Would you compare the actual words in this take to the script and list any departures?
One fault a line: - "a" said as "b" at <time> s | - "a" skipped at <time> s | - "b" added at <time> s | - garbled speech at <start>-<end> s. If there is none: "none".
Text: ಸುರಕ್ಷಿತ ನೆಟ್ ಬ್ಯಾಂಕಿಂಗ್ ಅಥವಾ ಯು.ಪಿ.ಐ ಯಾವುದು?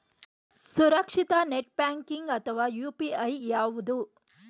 none